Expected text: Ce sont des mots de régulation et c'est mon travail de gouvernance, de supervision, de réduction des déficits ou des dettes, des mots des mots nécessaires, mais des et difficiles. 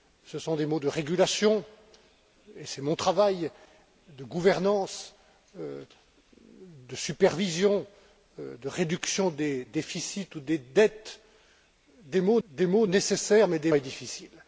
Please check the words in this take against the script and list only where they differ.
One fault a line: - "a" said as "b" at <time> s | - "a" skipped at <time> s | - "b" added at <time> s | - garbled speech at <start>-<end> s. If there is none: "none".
none